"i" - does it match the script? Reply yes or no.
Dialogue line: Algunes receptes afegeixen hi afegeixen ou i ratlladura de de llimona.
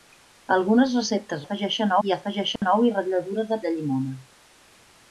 yes